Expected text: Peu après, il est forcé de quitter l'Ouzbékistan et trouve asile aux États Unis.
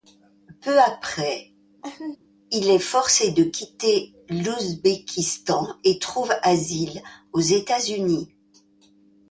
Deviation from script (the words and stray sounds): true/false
true